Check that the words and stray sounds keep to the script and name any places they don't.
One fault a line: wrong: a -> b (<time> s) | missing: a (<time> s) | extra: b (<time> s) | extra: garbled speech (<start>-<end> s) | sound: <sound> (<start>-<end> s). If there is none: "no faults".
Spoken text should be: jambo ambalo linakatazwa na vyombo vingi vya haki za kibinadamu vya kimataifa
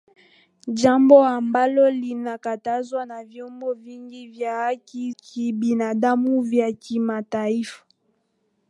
missing: za (5.1 s)